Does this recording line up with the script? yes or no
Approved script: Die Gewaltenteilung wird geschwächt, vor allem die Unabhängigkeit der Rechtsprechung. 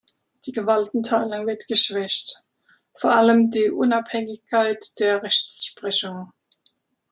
yes